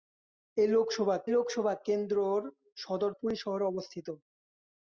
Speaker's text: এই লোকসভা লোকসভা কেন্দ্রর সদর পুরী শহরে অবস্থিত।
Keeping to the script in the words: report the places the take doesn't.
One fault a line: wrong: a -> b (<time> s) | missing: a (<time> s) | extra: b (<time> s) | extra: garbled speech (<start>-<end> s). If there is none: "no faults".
no faults